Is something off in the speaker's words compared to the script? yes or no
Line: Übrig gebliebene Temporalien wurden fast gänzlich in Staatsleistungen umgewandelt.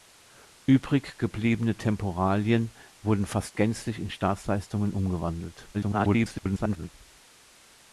yes